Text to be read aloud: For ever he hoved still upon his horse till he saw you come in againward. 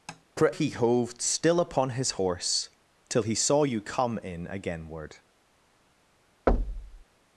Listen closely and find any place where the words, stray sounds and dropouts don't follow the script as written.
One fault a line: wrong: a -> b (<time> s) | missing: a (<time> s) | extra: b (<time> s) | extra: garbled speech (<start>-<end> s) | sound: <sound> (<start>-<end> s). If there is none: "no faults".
sound: tap (0.1-0.2 s)
missing: ever (0.6 s)
sound: thud (6.5-7.0 s)